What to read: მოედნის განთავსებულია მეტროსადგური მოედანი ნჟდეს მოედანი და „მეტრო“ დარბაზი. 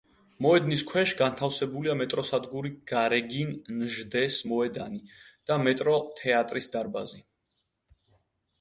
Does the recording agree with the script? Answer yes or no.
no